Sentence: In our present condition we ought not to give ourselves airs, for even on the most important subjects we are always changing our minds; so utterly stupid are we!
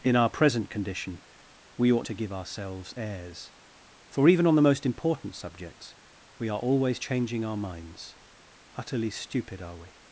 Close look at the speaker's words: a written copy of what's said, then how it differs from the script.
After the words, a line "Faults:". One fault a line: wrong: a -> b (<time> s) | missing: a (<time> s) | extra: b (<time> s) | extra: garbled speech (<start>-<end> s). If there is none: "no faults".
In our present condition we ought to give ourselves airs, for even on the most important subjects we are always changing our minds; utterly stupid are we!
Faults:
missing: not (2.1 s)
missing: so (8.2 s)